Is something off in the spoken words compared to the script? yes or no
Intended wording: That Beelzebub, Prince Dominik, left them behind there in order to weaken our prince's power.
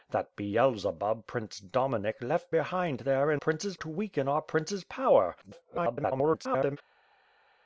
yes